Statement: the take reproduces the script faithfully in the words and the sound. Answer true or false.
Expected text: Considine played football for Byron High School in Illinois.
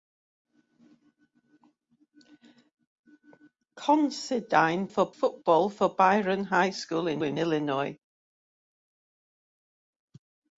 false